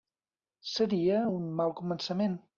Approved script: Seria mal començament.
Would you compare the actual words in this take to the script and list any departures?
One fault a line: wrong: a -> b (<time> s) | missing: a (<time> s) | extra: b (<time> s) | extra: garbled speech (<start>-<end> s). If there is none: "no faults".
extra: un (1.3 s)